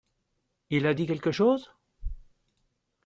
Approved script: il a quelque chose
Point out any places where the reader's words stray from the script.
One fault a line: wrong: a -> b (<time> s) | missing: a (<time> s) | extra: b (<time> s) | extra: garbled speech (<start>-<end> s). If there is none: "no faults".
extra: dit (0.9 s)